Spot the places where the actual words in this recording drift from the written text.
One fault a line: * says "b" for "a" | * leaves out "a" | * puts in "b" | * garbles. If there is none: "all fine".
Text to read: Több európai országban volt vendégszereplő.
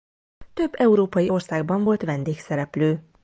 all fine